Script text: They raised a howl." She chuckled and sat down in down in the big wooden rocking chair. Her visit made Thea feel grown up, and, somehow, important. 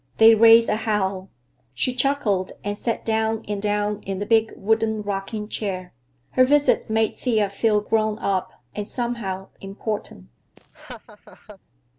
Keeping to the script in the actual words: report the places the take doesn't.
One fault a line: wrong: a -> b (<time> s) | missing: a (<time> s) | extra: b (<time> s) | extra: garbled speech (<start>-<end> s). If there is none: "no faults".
no faults